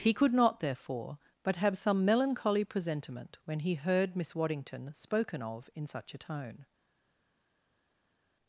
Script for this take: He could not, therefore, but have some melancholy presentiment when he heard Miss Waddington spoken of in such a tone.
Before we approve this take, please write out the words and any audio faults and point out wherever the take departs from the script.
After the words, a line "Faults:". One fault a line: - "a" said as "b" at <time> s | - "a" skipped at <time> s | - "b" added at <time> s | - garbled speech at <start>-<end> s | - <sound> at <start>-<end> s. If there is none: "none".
He could not, therefore, but have some melancholy presentiment when he heard Miss Waddington spoken of in such a tone.
Faults:
none